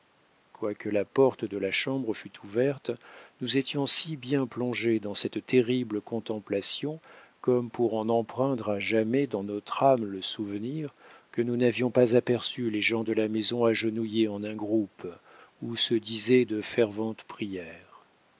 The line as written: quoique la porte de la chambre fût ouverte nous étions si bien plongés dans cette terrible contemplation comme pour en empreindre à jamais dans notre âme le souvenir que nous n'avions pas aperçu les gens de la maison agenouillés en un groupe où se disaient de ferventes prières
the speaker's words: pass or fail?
pass